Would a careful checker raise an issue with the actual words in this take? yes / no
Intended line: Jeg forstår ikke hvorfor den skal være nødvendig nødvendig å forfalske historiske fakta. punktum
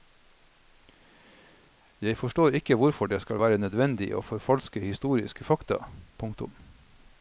yes